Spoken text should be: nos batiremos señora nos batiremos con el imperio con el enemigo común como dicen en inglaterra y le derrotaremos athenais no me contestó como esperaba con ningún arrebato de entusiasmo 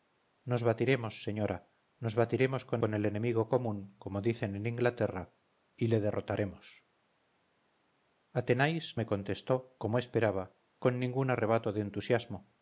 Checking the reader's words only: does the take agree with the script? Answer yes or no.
no